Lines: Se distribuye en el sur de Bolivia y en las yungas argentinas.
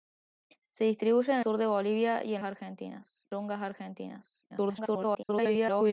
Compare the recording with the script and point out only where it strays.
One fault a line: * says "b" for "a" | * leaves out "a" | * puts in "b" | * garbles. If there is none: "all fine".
* leaves out "el"
* says "argentinas" for "las"
* garbles